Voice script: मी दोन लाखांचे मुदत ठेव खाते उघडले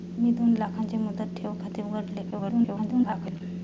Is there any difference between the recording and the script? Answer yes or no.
yes